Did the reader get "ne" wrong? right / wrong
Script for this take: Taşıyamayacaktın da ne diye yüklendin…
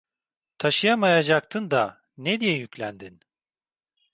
right